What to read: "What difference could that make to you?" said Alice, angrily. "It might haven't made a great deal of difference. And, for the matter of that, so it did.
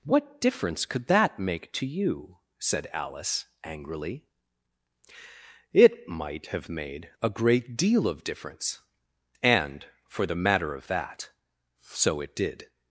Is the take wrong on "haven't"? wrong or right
wrong